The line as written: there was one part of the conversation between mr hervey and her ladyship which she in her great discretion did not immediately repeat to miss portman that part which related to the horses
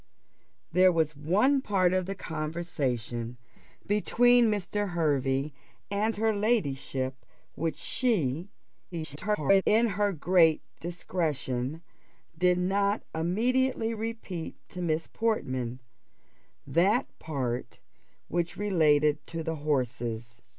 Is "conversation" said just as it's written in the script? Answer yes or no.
yes